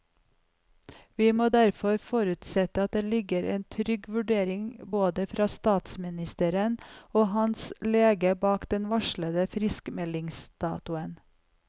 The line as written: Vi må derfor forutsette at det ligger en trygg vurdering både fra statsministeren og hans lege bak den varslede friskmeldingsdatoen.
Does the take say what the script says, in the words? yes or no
yes